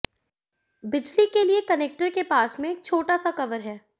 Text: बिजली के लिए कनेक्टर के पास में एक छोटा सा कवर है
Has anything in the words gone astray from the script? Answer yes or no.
no